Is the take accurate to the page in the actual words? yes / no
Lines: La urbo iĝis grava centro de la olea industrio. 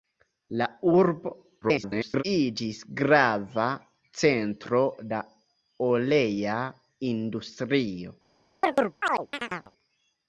no